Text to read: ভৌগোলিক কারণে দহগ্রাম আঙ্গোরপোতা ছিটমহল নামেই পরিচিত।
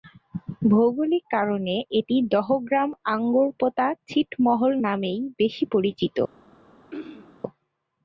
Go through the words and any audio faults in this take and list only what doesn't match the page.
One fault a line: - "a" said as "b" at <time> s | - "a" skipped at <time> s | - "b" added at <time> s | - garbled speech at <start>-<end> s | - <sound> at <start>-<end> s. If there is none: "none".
- "এটি" added at 2.0 s
- "বেশি" added at 5.4 s
- throat clearing at 6.9-7.4 s